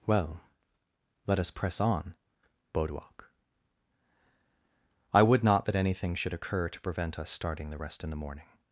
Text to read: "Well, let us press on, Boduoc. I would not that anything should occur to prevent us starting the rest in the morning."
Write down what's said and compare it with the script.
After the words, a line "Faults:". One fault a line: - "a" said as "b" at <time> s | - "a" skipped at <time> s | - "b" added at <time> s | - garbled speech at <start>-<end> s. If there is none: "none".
"Well, let us press on, Boduoc. I would not that anything should occur to prevent us starting the rest in the morning."
Faults:
none